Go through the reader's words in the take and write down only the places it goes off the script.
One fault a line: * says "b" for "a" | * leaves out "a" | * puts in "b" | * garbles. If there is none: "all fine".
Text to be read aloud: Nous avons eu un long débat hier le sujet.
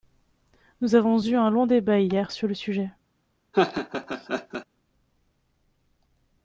* puts in "sur"